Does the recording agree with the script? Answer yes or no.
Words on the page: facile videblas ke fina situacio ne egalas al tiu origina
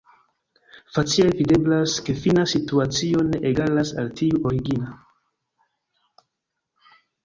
yes